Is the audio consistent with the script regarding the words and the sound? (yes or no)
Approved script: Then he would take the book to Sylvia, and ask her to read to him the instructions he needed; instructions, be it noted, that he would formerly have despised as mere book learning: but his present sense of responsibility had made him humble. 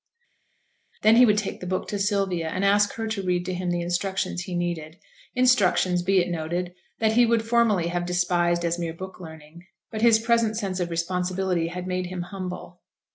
yes